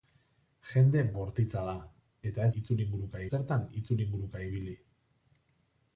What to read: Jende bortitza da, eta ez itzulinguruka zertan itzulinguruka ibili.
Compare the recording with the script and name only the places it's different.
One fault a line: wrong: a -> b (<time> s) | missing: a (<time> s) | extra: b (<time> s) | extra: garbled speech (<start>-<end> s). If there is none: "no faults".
no faults